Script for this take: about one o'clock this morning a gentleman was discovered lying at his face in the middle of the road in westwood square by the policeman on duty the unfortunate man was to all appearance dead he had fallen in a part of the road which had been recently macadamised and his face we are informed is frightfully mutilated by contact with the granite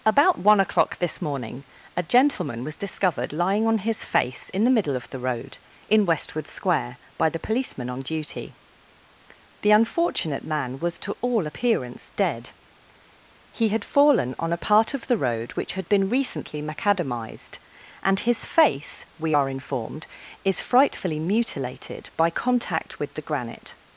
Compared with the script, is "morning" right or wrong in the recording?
right